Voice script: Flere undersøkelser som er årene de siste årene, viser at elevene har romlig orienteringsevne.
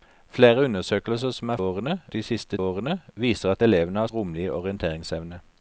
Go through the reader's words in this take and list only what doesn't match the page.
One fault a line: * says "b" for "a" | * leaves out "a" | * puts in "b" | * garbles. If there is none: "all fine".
all fine